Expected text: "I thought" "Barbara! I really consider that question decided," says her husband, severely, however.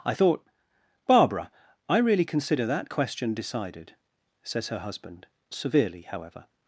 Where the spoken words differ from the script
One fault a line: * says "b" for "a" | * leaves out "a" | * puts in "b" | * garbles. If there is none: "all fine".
all fine